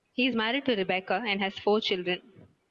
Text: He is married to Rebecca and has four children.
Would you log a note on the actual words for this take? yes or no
no